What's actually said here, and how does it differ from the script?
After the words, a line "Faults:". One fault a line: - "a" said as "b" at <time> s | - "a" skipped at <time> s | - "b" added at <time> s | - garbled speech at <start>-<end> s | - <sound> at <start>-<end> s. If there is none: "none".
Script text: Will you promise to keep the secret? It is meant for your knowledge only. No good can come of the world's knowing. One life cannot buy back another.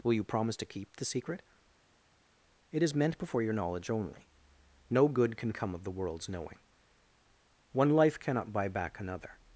Will you promise to keep the secret? It is meant before your knowledge only. No good can come of the world's knowing. One life cannot buy back another.
Faults:
- "for" said as "before" at 3.2 s